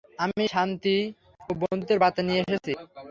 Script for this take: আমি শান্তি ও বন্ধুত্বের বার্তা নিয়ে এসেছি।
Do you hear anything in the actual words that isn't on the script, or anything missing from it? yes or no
no